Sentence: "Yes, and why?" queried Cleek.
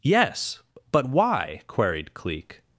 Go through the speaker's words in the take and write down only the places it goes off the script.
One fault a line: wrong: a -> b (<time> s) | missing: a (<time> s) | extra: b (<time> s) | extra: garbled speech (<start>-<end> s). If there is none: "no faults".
wrong: and -> but (0.9 s)